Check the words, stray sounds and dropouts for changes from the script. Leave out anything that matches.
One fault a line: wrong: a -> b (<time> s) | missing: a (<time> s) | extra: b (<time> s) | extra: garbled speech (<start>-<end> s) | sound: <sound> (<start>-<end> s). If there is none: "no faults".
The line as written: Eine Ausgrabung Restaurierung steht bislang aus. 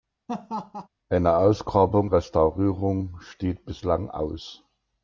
sound: laugh (0.3-0.9 s)